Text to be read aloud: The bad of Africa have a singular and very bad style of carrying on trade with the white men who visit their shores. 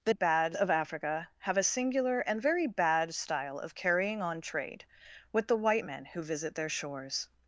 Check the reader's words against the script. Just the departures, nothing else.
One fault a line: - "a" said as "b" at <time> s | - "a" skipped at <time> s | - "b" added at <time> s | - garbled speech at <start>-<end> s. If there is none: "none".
none